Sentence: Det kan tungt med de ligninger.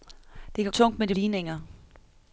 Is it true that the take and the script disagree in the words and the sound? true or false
false